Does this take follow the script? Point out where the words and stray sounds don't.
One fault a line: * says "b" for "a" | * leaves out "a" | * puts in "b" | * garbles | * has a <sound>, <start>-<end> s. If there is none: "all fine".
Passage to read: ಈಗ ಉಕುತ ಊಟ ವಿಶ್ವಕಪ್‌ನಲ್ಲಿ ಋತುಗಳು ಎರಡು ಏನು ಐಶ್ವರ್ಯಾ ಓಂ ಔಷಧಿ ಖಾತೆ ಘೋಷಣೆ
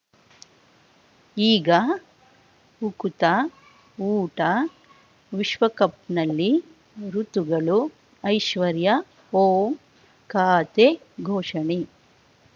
* leaves out "ಎರಡು ಏನು"
* leaves out "ಔಷಧಿ"